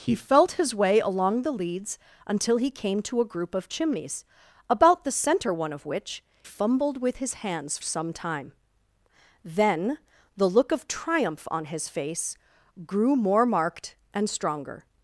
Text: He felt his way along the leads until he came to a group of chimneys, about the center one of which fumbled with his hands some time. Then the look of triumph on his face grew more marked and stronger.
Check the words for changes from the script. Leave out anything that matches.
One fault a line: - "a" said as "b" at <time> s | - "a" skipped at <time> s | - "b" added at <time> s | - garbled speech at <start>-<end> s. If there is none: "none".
none